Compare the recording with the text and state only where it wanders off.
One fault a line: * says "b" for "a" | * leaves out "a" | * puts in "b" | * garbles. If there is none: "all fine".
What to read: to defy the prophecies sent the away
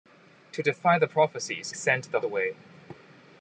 all fine